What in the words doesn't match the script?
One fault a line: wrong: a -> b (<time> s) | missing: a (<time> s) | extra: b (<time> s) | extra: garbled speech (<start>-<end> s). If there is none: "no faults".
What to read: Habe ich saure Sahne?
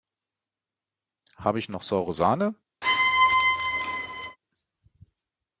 extra: noch (1.7 s)